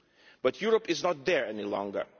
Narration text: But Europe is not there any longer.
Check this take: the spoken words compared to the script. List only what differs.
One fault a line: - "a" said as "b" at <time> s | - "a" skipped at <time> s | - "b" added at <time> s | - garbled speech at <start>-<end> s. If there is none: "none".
none